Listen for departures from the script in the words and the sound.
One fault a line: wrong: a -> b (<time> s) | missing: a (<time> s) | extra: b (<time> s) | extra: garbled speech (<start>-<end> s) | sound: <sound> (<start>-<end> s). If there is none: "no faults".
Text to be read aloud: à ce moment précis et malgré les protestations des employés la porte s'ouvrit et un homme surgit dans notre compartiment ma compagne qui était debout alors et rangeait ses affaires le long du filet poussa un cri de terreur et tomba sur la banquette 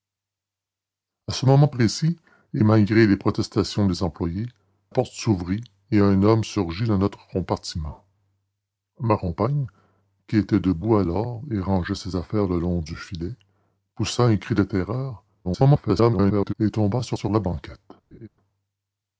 missing: la (4.5 s)
extra: garbled speech (15.4-16.5 s)
extra: sur (17.1 s)
sound: laugh (18.1-18.3 s)